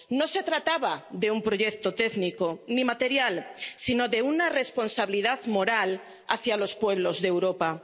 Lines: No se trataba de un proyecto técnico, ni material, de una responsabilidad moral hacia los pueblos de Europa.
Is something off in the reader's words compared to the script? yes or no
yes